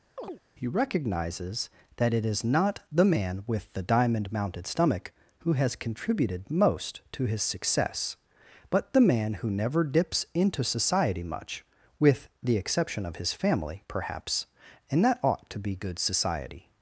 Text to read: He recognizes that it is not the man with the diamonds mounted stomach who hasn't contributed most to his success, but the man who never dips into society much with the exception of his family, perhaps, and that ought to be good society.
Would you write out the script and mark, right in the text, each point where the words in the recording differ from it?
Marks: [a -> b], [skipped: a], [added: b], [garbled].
He recognizes that it is not the man with the [diamonds -> diamond] mounted stomach who [hasn't -> has] contributed most to his success, but the man who never dips into society much with the exception of his family, perhaps, and that ought to be good society.